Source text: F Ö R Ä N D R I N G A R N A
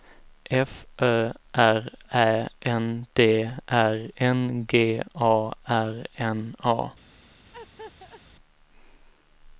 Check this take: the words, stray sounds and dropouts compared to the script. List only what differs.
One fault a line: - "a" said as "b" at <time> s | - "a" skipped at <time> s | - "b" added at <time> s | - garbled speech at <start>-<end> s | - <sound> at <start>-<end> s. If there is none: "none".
- "I" skipped at 4.1 s
- laugh at 7.5-8.2 s